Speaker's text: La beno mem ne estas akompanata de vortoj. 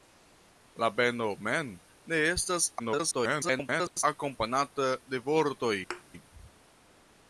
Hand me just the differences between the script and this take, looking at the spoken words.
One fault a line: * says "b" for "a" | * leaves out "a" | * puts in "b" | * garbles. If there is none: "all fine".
* garbles